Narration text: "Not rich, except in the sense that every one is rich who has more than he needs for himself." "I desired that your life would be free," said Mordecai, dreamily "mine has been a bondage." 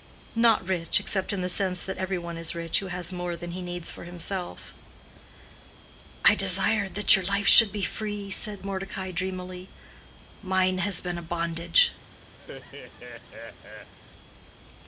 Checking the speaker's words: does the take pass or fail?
fail